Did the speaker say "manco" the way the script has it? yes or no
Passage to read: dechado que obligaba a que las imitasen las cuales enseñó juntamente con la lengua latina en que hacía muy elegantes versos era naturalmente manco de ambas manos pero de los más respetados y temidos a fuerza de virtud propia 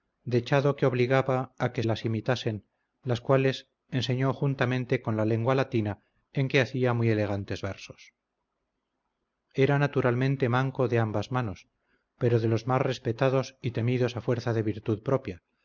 yes